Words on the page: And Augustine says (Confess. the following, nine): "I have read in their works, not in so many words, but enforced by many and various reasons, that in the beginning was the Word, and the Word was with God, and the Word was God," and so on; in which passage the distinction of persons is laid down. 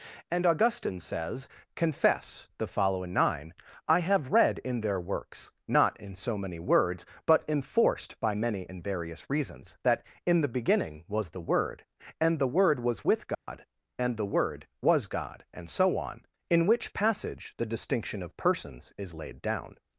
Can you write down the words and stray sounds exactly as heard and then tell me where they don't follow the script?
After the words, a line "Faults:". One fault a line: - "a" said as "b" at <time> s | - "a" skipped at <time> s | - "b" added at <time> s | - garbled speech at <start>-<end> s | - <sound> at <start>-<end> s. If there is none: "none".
And Augustine says (Confess. the following, nine): "I have read in their works, not in so many words, but enforced by many and various reasons, that in the beginning was the Word, and the Word was with God, and the Word was God," and so on; in which passage the distinction of persons is laid down.
Faults:
- dropout at 13.3-13.5 s